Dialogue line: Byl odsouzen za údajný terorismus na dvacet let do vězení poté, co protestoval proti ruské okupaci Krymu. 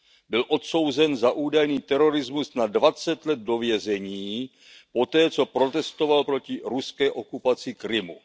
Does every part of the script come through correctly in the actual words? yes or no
yes